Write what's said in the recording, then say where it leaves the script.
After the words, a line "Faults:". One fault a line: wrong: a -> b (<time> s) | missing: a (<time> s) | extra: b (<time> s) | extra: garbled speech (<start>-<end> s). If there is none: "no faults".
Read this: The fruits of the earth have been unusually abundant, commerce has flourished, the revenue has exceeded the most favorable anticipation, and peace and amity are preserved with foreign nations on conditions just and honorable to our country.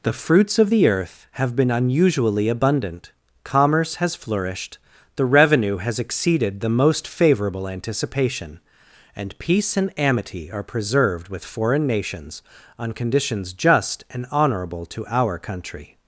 The fruits of the earth have been unusually abundant, commerce has flourished, the revenue has exceeded the most favorable anticipation, and peace and amity are preserved with foreign nations on conditions just and honorable to our country.
Faults:
no faults